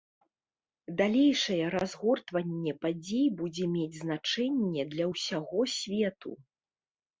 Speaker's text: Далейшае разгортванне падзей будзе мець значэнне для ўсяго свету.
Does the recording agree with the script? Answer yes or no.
yes